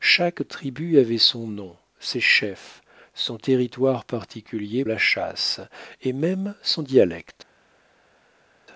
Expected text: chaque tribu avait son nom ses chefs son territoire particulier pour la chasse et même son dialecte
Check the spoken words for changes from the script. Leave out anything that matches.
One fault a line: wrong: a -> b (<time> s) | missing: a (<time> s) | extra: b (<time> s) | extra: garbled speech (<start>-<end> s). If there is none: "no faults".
missing: pour (4.8 s)